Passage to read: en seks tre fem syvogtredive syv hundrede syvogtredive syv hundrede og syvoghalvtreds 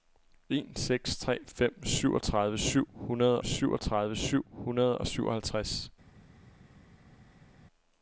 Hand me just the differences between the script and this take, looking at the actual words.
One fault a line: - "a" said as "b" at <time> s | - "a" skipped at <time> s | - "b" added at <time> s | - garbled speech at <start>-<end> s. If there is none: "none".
none